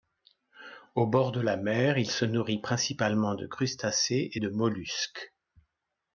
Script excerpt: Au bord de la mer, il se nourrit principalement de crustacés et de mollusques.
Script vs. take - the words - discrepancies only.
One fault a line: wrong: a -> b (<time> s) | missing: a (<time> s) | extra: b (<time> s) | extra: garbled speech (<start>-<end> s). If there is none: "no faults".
no faults